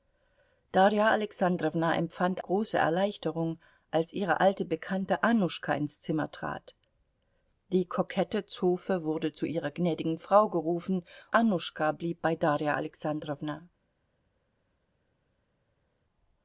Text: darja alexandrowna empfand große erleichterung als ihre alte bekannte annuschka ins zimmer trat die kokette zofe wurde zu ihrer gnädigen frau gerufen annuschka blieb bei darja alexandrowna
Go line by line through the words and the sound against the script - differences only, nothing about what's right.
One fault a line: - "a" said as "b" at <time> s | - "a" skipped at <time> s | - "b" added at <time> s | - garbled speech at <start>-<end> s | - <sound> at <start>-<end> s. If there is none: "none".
none